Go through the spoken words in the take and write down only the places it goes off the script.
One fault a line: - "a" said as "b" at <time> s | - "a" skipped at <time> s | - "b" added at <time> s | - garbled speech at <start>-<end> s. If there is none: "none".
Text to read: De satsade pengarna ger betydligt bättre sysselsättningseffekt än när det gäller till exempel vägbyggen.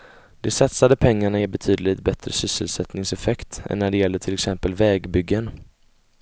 none